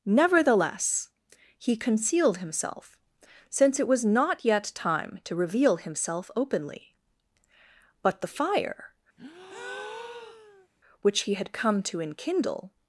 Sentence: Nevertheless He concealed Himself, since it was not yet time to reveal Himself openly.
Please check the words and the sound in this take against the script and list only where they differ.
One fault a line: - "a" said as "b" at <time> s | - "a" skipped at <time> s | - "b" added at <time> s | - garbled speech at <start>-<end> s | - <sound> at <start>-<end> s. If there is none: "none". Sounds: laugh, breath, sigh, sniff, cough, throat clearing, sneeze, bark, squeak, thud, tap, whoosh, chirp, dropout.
- "But the fire which He had come to enkindle" added at 8.0 s
- breath at 9.2-10.7 s